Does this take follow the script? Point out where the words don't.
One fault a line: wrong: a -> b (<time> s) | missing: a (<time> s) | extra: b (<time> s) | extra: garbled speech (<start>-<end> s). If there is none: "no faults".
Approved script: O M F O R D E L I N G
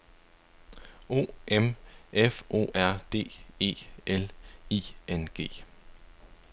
no faults